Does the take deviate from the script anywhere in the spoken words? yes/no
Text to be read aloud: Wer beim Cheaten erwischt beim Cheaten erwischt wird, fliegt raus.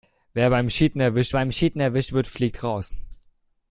no